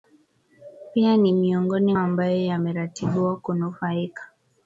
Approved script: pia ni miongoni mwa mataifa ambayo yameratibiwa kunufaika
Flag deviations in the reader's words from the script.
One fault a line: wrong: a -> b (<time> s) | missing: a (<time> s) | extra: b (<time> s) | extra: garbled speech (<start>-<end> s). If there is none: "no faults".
missing: mwa mataifa (1.9 s)